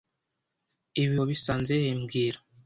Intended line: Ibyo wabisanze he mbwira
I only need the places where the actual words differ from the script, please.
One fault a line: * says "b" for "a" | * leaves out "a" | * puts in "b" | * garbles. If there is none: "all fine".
* says "Ibi" for "Ibyo"